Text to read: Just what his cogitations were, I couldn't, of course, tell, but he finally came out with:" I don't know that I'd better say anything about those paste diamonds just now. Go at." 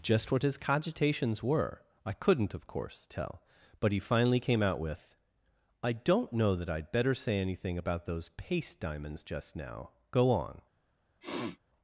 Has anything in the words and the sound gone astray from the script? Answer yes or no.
yes